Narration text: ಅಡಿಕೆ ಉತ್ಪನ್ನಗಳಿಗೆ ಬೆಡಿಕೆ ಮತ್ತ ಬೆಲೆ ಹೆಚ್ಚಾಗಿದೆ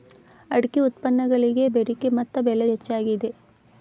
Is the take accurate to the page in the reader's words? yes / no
yes